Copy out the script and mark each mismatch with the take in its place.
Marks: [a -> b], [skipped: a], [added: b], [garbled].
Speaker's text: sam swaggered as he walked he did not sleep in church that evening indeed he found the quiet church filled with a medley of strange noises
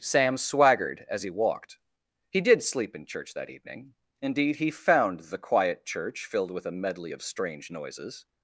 sam swaggered as he walked he did [skipped: not] sleep in church that evening indeed he found the quiet church filled with a medley of strange noises